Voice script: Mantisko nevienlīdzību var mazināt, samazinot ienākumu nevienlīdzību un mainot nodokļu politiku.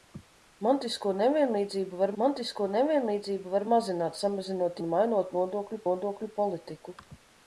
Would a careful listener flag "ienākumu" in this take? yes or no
yes